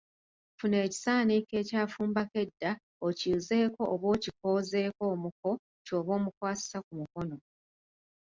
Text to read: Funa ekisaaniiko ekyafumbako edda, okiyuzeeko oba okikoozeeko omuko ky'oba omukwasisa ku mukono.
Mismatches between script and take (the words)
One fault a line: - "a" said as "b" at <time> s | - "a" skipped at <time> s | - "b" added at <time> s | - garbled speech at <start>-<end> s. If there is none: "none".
none